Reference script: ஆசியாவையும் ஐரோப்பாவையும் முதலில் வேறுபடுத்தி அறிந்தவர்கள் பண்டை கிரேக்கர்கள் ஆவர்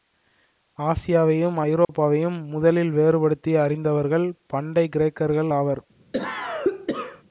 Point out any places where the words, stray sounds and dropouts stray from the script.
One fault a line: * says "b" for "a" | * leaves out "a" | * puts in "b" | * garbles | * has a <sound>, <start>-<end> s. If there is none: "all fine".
* has a dropout, 1.8-1.9 s
* has a cough, 6.1-7.2 s